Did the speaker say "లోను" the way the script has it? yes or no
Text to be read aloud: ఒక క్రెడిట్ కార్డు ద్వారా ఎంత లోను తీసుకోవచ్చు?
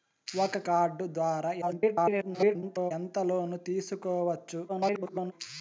yes